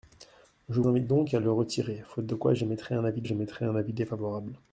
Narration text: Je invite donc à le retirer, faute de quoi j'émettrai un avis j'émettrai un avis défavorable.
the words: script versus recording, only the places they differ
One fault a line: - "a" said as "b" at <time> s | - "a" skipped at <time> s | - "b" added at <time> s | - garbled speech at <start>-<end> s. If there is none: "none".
none